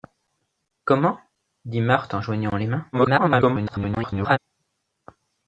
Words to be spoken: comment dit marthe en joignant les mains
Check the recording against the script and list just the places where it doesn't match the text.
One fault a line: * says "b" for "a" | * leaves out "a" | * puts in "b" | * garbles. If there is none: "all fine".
* garbles